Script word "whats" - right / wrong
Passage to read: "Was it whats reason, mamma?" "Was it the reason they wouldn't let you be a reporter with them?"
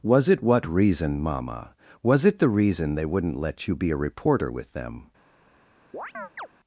wrong